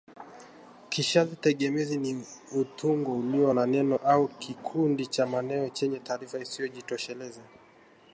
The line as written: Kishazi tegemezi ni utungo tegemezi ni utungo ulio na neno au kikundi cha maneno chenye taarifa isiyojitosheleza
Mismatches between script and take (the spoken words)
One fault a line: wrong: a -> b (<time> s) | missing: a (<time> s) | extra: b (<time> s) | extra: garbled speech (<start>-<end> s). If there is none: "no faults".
missing: tegemezi ni utungo (3.2 s)